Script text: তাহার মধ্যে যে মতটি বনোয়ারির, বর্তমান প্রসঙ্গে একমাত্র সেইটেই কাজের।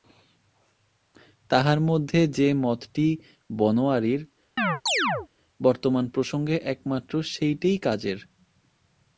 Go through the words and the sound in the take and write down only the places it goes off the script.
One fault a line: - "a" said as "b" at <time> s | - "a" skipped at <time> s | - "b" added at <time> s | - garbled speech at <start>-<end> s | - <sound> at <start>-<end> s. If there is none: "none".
- chirp at 4.6-5.3 s